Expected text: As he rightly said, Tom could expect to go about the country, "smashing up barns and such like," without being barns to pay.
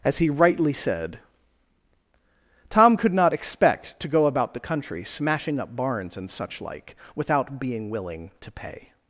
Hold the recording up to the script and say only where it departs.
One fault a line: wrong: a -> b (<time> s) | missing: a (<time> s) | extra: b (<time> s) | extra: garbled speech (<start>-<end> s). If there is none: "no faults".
extra: not (3.1 s)
wrong: barns -> willing (7.9 s)